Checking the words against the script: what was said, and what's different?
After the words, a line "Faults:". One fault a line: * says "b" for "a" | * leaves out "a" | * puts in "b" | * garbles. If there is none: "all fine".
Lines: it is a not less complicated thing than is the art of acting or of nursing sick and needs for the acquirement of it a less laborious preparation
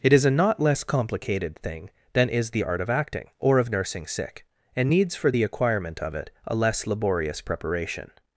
it is a not less complicated thing than is the art of acting or of nursing sick and needs for the acquirement of it a less laborious preparation
Faults:
all fine